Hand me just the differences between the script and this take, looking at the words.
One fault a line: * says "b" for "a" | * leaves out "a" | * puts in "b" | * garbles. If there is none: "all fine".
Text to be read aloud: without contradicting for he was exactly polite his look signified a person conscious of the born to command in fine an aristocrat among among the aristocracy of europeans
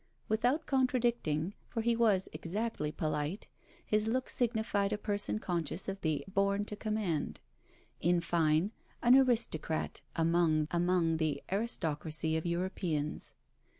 all fine